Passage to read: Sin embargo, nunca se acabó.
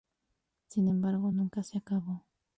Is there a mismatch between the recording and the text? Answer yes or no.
no